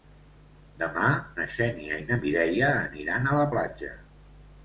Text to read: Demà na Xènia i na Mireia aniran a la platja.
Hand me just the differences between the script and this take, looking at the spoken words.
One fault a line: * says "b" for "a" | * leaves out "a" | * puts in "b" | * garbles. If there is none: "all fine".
all fine